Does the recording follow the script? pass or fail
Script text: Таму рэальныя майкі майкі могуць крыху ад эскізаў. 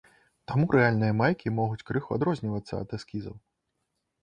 fail